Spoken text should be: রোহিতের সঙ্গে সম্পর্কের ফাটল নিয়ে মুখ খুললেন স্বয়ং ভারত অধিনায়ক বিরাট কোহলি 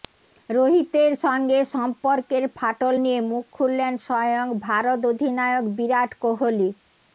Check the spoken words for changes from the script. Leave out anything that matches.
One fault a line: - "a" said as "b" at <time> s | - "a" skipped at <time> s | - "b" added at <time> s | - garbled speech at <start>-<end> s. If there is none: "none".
none